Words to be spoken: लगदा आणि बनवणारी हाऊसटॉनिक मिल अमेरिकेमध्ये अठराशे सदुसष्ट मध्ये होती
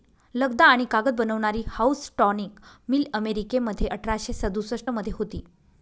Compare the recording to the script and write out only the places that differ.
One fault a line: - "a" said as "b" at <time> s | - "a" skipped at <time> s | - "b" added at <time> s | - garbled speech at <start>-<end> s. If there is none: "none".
- "कागद" added at 0.9 s